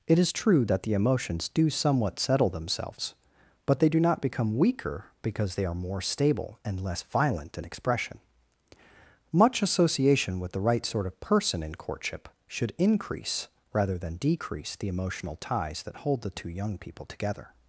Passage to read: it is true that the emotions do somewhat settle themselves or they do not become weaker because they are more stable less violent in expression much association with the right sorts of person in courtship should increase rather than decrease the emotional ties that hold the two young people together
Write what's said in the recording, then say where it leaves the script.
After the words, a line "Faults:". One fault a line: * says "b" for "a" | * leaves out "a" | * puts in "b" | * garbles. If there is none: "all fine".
it is true that the emotions do somewhat settle themselves but they do not become weaker because they are more stable and less violent in expression much association with the right sort of person in courtship should increase rather than decrease the emotional ties that hold the two young people together
Faults:
* says "but" for "or"
* puts in "and"
* says "sort" for "sorts"